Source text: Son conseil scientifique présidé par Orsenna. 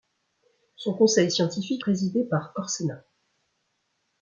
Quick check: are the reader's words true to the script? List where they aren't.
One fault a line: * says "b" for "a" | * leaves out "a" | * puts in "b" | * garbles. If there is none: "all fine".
all fine